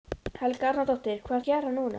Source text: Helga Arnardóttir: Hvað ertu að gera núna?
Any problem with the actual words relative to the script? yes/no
yes